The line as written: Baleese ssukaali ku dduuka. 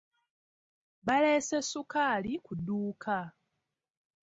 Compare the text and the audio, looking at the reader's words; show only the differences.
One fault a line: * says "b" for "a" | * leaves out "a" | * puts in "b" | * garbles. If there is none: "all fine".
all fine